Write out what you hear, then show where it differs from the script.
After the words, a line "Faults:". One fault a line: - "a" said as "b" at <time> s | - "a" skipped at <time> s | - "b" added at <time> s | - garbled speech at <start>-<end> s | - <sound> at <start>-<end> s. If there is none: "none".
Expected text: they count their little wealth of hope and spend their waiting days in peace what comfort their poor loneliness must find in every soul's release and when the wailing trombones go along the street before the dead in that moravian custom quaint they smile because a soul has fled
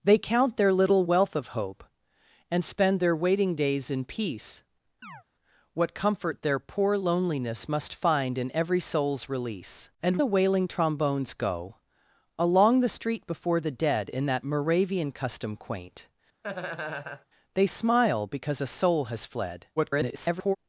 they count their little wealth of hope and spend their waiting days in peace what comfort their poor loneliness must find in every soul's release and the wailing trombones go along the street before the dead in that moravian custom quaint they smile because a soul has fled [garbled]
Faults:
- chirp at 5.0-5.2 s
- "when" skipped at 10.2 s
- laugh at 16.4-17.3 s
- garbled speech at 19.8-20.6 s